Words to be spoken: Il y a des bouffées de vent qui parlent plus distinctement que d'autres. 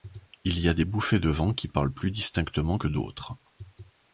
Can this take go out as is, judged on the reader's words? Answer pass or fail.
pass